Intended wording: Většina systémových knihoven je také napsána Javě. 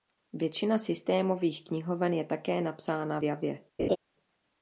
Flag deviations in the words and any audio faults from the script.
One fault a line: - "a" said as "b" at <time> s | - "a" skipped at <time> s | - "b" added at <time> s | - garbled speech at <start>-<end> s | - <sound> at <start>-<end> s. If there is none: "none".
- laugh at 3.8-4.0 s